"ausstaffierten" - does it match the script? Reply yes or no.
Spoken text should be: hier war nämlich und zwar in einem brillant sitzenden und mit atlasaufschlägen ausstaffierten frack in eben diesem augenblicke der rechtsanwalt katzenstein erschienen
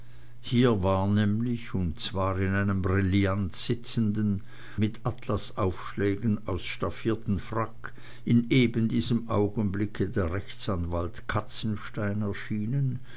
yes